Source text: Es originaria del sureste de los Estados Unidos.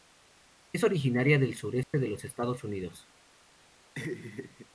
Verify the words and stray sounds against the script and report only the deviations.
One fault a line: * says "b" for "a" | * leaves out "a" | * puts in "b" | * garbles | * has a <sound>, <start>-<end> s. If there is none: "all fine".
* has a dropout, 1.8-1.9 s
* has a laugh, 4.0-4.7 s